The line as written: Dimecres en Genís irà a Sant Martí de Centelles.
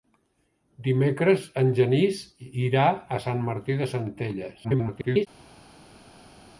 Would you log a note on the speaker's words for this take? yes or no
yes